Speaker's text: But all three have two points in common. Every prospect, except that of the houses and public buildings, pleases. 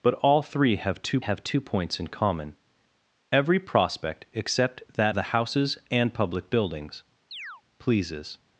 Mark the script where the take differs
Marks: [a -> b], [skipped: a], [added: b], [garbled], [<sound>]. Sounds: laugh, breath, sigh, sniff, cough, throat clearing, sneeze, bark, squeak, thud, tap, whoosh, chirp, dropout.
But all three have two [added: have two] points in common. Every prospect, except that [skipped: of] the houses and public buildings, [chirp] pleases.